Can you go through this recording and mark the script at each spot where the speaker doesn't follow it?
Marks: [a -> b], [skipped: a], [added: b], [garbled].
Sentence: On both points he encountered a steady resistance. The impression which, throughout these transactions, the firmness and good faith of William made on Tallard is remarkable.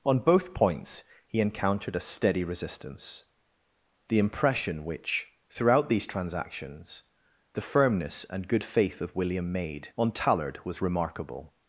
On both points he encountered a steady resistance. The impression which, throughout these transactions, the firmness and good faith of William made on Tallard [is -> was] remarkable.